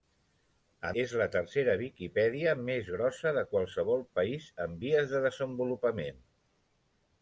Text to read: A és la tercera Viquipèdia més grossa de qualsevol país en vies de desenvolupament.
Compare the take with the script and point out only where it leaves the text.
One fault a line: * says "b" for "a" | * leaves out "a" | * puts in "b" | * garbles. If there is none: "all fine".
all fine